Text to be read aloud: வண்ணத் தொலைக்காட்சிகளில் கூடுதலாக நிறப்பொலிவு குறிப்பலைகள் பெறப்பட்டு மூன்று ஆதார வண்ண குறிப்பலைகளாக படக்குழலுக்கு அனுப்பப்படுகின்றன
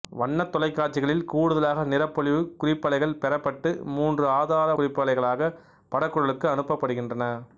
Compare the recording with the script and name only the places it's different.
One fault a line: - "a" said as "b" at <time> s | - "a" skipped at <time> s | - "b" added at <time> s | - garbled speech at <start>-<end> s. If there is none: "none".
- "வண்ண" skipped at 4.7 s